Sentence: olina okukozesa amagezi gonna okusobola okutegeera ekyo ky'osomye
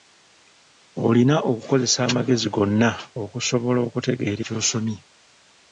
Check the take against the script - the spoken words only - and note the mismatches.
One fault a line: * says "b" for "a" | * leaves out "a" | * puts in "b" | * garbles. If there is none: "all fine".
* leaves out "ekyo"